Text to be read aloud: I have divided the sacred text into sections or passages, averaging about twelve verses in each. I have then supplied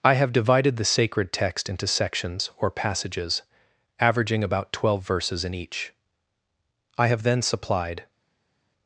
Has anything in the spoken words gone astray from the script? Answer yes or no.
no